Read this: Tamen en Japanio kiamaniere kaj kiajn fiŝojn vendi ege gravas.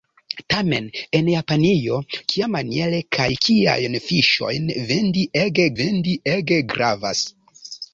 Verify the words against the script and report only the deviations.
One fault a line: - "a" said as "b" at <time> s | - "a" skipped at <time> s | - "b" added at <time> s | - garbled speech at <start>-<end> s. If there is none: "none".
- "vendi ege" added at 5.8 s